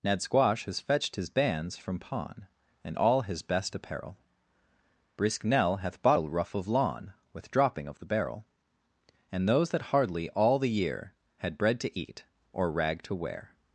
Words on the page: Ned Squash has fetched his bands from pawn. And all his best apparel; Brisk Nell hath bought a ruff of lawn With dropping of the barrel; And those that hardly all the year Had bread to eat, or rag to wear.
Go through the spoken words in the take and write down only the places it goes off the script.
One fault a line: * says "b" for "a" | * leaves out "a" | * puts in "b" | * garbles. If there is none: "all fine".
all fine